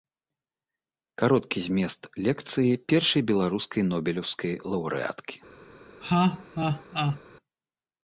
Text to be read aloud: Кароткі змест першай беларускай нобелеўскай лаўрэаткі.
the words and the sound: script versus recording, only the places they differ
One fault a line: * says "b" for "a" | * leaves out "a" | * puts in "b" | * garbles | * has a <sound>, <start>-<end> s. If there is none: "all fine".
* puts in "лекцыі"
* has a laugh, 6.0-7.2 s